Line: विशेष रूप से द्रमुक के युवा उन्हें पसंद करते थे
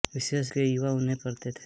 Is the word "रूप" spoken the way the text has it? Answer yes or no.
no